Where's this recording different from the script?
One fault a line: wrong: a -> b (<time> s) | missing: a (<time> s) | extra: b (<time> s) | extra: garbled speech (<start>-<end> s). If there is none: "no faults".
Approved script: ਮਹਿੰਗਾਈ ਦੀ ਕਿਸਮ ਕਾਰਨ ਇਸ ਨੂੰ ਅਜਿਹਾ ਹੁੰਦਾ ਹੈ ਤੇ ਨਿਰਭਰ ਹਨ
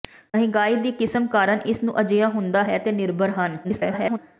extra: garbled speech (3.6-4.2 s)